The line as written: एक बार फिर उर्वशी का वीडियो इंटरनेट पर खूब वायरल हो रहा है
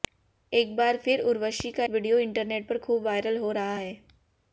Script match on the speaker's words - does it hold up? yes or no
yes